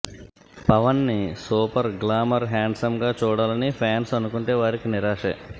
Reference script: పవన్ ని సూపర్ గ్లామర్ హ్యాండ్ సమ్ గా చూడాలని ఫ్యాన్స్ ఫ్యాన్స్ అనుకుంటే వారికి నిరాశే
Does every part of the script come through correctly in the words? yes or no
no